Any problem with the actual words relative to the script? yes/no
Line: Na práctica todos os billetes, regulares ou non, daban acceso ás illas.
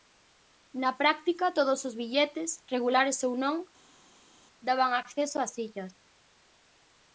no